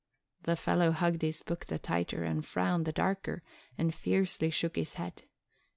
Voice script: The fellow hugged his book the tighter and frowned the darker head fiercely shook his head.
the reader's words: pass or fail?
fail